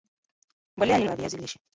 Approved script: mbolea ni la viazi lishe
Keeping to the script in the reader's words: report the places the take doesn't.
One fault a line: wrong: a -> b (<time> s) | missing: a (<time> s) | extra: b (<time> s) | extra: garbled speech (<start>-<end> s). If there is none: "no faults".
no faults